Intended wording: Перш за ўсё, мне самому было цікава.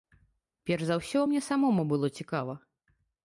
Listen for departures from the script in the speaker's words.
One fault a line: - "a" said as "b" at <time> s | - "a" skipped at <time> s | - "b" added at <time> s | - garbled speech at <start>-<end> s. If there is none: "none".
none